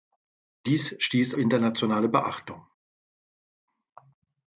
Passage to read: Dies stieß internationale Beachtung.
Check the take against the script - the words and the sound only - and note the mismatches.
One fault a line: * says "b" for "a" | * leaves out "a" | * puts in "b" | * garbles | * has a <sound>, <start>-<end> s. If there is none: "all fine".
all fine